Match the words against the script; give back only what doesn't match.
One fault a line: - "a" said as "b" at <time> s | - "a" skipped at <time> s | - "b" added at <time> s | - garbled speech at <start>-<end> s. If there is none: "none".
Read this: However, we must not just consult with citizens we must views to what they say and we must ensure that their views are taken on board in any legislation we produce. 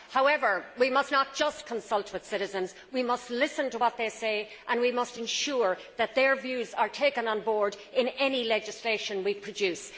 - "views" said as "listen" at 3.3 s